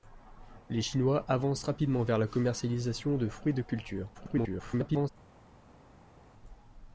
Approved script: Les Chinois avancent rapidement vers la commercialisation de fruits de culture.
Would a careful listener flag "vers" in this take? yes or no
no